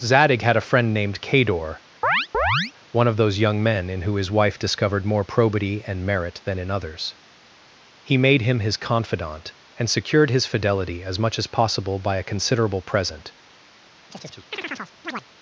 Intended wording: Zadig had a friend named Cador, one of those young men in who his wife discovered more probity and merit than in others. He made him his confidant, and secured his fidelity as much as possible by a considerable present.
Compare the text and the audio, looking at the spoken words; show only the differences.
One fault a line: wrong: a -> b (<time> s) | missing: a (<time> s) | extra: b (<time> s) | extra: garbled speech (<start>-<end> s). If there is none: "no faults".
no faults